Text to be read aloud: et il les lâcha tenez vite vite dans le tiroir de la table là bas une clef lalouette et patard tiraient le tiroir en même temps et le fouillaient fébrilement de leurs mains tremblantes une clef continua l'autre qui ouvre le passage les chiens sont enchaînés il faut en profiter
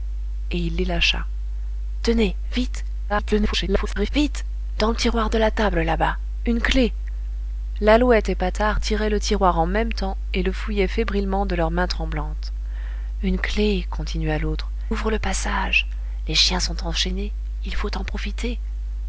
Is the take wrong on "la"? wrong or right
right